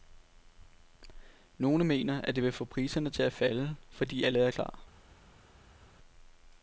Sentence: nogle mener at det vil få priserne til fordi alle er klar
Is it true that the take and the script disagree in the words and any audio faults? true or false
true